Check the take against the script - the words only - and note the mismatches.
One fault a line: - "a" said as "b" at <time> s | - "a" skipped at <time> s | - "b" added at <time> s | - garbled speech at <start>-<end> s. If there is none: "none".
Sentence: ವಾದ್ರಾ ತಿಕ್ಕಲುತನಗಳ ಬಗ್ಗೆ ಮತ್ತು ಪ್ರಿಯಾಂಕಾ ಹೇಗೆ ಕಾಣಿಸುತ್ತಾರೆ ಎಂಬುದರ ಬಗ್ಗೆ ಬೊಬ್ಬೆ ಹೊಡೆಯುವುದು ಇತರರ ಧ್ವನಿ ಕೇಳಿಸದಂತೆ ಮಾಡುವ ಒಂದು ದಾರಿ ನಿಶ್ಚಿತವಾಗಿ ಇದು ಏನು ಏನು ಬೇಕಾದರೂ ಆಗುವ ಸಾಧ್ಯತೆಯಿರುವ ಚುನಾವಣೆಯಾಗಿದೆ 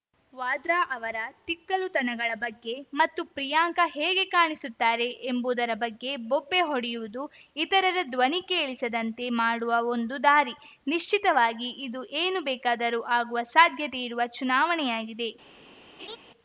- "ಅವರ" added at 0.9 s
- "ಏನು" skipped at 12.4 s